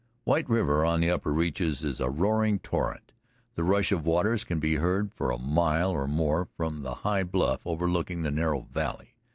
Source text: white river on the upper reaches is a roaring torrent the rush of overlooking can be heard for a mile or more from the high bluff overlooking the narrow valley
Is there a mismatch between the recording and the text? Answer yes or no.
yes